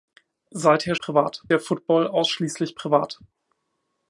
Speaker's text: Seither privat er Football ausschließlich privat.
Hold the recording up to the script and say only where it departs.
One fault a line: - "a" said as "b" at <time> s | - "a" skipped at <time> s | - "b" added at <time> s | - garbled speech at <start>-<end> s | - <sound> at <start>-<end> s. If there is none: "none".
none